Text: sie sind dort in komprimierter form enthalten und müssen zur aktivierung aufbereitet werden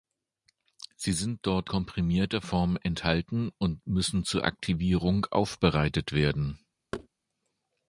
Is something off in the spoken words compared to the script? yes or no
yes